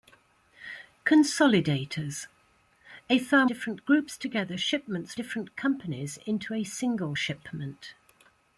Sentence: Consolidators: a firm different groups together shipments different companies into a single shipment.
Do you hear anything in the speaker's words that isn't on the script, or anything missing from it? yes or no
no